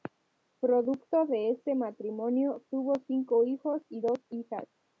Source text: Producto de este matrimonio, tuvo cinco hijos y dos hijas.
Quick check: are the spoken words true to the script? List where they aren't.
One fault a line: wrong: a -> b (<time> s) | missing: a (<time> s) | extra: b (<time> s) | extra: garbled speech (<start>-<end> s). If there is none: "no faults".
no faults